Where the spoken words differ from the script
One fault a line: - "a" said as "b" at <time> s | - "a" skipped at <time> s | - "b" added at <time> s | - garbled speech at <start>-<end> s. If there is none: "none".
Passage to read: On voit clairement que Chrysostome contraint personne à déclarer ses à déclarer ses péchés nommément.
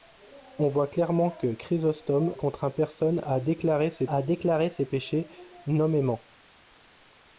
none